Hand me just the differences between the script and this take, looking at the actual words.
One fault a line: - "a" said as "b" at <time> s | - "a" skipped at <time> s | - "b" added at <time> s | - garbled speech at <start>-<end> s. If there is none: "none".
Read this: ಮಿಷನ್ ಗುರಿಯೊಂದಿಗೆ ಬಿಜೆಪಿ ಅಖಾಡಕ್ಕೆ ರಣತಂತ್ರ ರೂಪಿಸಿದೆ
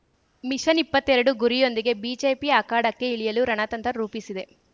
- "ಇಪ್ಪತ್ತೆರಡು" added at 0.8 s
- "ಇಳಿಯಲು" added at 3.1 s